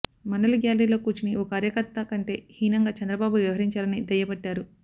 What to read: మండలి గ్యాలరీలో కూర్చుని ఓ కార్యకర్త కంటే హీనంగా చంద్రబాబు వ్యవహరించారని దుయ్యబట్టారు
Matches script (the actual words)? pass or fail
pass